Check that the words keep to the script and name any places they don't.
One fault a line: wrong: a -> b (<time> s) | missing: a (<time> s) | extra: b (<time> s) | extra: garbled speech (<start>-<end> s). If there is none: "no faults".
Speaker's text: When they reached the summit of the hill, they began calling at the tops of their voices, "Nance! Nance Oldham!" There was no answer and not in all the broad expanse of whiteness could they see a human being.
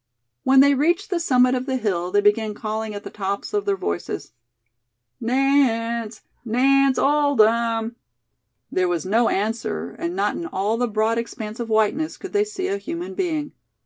no faults